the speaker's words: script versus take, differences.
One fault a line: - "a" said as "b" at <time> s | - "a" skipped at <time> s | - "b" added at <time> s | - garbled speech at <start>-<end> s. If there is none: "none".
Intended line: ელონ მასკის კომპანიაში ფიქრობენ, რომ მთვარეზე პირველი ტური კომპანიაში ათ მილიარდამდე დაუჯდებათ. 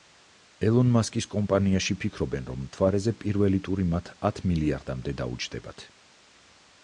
- "კომპანიაში" said as "მათ" at 3.9 s